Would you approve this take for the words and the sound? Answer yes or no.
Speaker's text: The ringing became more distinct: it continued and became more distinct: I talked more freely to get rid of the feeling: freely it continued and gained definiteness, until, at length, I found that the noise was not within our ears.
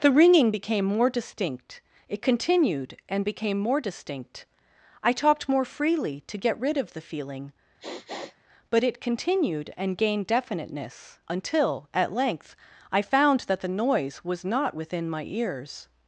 no